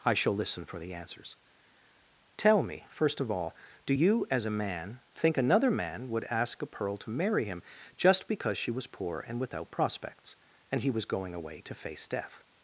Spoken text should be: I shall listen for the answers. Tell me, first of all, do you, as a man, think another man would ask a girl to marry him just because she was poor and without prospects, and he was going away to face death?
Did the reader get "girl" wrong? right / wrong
wrong